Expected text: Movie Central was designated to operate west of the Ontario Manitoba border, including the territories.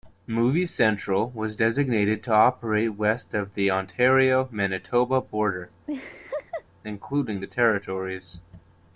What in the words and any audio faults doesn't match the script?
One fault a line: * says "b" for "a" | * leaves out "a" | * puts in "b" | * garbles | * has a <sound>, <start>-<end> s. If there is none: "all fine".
* has a laugh, 5.9-6.6 s